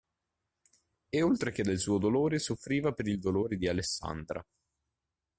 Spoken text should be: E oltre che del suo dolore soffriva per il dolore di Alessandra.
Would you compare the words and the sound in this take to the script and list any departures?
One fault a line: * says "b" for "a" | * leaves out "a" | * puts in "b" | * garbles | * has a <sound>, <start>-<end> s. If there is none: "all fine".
all fine